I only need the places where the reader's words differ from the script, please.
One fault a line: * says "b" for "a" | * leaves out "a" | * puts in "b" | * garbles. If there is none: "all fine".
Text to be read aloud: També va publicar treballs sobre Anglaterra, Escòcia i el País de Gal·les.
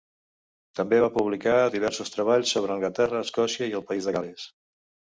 * puts in "diversos"